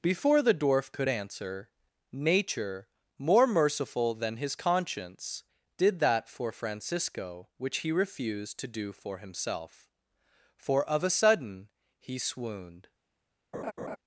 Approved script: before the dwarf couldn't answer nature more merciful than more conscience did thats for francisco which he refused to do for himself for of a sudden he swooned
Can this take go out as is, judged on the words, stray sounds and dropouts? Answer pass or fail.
fail